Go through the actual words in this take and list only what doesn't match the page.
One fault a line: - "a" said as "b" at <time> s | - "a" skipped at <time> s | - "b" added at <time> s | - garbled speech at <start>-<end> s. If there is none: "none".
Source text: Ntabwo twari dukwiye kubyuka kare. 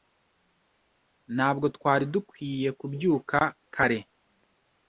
none